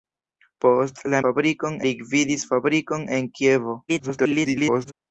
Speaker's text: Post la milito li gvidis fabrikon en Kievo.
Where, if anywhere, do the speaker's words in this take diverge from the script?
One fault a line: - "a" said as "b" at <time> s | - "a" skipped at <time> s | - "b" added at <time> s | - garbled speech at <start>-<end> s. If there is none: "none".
- "milito" said as "fabrikon" at 1.2 s
- garbled speech at 3.9-4.9 s